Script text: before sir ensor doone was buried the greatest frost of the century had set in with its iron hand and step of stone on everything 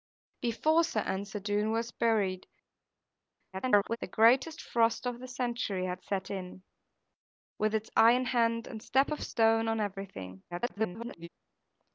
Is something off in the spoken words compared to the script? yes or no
yes